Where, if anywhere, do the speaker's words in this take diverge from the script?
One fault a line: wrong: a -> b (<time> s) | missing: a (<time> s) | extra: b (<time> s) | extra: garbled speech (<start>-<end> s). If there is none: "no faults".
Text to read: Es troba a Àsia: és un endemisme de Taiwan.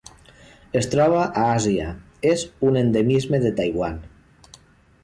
no faults